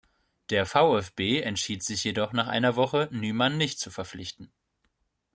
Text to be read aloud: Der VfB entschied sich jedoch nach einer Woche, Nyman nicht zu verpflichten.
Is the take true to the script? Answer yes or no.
yes